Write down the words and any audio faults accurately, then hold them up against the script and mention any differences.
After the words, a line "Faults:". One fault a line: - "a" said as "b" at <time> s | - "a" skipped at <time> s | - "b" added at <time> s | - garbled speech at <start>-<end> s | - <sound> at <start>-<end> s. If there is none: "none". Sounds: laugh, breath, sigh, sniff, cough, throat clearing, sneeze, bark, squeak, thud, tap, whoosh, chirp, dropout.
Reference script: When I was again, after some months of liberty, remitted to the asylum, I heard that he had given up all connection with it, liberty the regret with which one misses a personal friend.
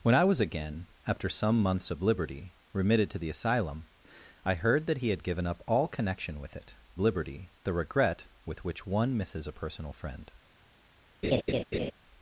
When I was again, after some months of liberty, remitted to the asylum, I heard that he had given up all connection with it, liberty the regret with which one misses a personal friend.
Faults:
- laugh at 11.2-11.9 s